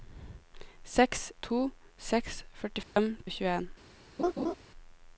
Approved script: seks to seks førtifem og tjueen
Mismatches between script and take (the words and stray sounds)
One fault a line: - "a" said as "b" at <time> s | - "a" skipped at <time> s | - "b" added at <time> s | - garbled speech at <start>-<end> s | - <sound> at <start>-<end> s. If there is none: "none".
- dropout at 2.8-3.0 s
- laugh at 4.2-4.6 s